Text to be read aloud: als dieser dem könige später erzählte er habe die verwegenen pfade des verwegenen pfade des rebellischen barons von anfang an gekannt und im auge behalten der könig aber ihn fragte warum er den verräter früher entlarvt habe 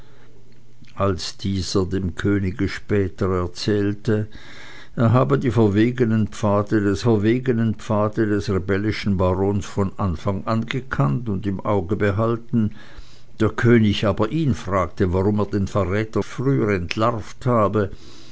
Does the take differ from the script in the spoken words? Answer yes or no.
no